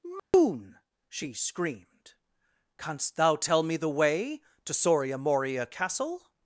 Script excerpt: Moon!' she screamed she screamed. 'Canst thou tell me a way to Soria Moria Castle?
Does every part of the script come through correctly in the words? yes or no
no